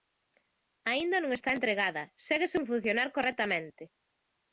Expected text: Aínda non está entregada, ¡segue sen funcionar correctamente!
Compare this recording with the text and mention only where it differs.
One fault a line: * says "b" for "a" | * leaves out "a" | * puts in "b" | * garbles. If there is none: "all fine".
all fine